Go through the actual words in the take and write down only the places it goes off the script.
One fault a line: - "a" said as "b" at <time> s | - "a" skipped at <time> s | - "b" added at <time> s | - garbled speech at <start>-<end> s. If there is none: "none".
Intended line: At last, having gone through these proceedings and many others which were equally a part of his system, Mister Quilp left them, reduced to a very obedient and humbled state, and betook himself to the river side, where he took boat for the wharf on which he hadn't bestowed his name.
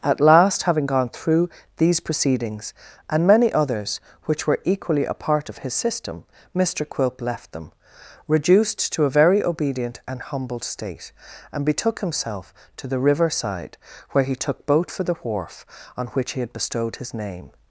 - "hadn't" said as "had" at 16.4 s